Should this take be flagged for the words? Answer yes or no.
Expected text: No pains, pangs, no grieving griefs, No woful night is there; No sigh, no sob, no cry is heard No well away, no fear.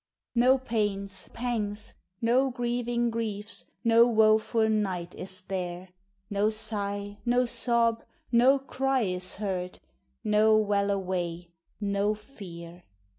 no